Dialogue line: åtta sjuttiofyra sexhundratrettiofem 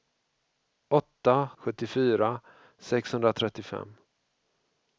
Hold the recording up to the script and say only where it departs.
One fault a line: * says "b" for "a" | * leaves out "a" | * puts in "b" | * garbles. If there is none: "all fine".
all fine